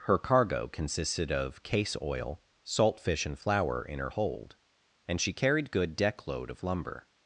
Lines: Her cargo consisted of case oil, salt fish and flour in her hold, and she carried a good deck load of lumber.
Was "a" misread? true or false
true